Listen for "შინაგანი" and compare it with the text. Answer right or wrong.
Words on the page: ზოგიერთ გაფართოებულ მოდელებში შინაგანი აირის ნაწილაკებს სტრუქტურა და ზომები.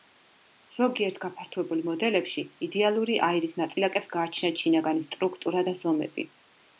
wrong